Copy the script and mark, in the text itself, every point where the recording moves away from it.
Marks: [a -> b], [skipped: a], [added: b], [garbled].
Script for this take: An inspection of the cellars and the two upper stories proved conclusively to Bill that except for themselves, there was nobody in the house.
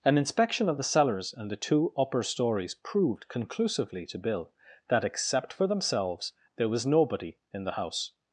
An inspection of the cellars and the two upper stories proved conclusively to Bill that except for themselves, there was nobody in the house.